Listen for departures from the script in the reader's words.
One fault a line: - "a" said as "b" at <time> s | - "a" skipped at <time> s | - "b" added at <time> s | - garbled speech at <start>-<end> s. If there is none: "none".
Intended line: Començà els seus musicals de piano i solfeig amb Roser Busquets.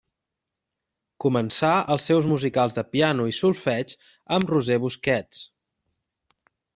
none